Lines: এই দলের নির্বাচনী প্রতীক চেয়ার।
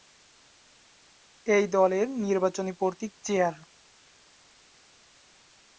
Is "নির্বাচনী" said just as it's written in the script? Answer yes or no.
yes